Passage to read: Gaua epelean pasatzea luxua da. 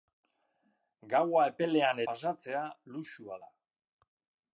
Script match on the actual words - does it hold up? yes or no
yes